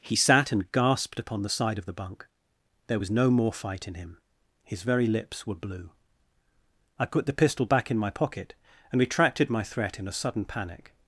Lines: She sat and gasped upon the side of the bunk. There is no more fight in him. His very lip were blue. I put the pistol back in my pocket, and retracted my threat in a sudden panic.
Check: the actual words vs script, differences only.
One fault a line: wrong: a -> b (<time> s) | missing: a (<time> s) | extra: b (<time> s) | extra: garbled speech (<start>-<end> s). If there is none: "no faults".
wrong: She -> He (0.0 s)
wrong: is -> was (3.0 s)
wrong: lip -> lips (5.1 s)